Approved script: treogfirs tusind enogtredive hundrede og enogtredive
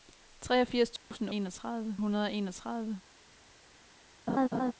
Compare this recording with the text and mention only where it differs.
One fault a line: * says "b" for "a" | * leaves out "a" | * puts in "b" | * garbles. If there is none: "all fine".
all fine